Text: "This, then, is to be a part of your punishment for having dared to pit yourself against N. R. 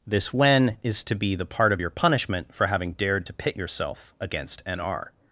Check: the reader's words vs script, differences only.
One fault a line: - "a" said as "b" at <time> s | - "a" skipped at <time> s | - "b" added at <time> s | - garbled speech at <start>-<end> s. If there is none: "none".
- "then" said as "when" at 0.3 s
- "a" said as "the" at 1.4 s